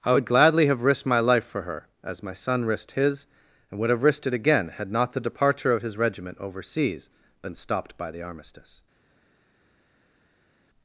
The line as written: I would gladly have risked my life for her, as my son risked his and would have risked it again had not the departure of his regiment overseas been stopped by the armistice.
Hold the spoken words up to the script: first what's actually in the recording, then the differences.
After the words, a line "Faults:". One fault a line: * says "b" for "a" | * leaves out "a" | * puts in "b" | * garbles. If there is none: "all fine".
I would gladly have risked my life for her, as my son risked his and would have risked it again had not the departure of his regiment overseas been stopped by the armistice.
Faults:
all fine